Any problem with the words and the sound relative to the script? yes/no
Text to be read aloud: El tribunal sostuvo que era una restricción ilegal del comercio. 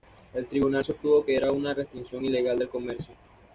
no